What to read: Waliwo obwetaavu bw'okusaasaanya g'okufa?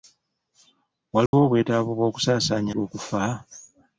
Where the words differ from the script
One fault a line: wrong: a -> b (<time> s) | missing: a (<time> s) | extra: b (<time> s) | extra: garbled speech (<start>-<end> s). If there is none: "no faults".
no faults